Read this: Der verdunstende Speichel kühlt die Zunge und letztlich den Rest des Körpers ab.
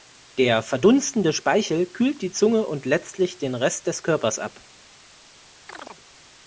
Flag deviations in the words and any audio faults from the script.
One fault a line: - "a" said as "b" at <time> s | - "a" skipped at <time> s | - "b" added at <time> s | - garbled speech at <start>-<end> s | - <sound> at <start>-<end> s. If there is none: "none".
- chirp at 5.7-6.0 s